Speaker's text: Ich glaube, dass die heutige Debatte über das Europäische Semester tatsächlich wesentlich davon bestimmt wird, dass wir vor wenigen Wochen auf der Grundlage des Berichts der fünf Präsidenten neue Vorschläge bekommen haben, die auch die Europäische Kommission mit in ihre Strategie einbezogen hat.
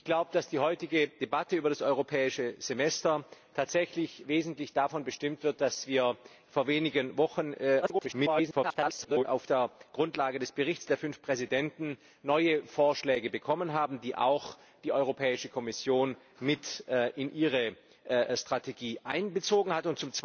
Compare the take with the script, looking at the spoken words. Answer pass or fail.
fail